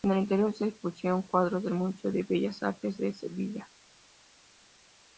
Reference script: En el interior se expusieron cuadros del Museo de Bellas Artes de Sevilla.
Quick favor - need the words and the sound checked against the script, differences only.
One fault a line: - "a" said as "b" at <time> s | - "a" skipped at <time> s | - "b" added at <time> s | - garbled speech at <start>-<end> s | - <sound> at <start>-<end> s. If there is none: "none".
none